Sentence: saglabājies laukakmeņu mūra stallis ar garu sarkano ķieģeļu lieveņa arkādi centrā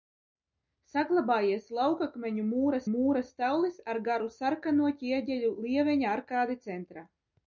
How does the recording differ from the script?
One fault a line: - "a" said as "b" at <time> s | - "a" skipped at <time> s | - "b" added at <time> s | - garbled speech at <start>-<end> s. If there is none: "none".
- "mūra" added at 2.9 s